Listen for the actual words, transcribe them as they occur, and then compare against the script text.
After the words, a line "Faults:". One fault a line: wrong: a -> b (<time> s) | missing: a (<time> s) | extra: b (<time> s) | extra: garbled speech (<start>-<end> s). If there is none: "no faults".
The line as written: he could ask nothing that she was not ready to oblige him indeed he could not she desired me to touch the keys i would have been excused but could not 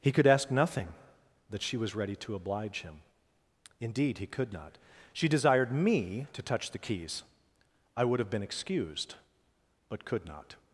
he could ask nothing that she was ready to oblige him indeed he could not she desired me to touch the keys i would have been excused but could not
Faults:
missing: not (1.9 s)